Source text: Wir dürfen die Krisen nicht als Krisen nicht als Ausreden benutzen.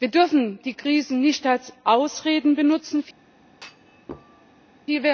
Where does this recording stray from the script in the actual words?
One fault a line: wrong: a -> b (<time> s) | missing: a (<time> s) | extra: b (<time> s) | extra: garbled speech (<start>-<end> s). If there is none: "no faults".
missing: Krisen nicht als (1.7 s)